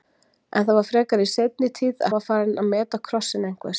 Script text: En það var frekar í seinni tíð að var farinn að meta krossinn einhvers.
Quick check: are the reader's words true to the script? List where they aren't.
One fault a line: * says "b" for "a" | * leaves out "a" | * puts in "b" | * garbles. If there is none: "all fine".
all fine